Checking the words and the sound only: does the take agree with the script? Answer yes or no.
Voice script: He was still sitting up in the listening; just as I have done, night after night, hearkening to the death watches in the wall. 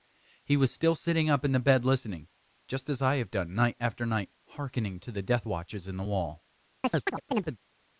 no